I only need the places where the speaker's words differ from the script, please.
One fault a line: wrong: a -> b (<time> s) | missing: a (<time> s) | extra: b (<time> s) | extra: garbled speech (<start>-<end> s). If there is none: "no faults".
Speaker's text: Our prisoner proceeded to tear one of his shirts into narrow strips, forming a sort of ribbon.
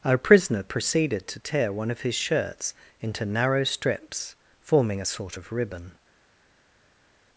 no faults